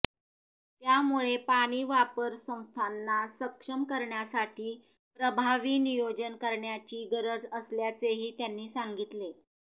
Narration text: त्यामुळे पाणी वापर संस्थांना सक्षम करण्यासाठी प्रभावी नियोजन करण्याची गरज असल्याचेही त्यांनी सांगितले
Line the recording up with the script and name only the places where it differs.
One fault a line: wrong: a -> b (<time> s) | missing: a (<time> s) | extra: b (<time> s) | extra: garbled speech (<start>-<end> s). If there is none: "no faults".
no faults